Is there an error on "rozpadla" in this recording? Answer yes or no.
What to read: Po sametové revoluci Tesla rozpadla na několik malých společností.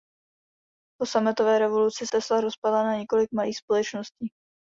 no